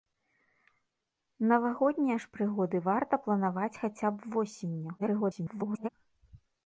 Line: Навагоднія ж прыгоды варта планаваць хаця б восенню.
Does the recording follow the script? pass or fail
fail